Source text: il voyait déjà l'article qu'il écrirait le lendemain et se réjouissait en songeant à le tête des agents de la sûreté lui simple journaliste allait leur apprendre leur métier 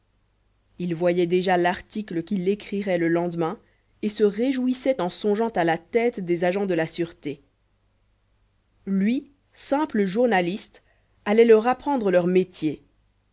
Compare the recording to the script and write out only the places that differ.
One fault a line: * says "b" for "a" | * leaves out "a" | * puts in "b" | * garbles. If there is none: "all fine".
* says "la" for "le"